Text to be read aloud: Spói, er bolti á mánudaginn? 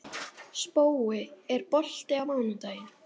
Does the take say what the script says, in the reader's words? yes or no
yes